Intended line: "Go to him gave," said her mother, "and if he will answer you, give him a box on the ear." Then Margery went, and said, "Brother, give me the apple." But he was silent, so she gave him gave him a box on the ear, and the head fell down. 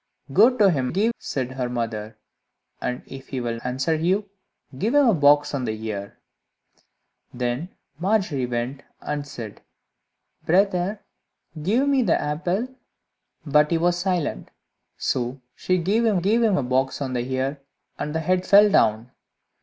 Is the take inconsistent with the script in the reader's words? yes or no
no